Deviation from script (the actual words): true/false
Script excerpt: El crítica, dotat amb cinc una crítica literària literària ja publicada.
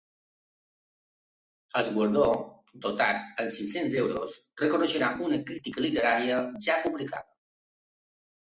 true